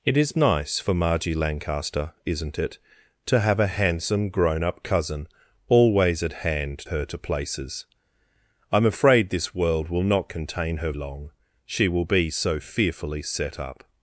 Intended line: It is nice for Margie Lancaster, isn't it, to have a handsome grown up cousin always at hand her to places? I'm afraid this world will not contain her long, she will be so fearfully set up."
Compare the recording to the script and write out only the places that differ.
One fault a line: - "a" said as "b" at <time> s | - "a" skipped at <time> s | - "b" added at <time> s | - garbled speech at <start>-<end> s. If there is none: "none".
none